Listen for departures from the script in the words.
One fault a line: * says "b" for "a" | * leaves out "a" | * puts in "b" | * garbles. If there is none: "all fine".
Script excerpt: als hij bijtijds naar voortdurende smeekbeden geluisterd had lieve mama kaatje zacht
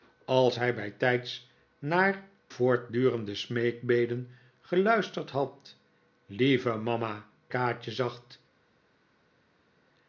all fine